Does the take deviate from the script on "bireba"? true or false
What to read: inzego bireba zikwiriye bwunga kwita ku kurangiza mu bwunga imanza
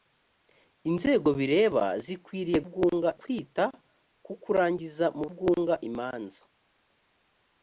false